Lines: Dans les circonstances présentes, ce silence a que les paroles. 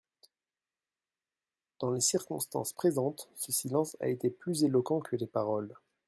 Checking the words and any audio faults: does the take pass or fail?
fail